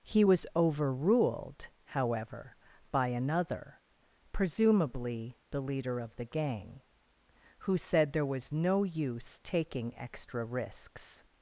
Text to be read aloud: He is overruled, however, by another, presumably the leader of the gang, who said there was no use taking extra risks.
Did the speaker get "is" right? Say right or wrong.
wrong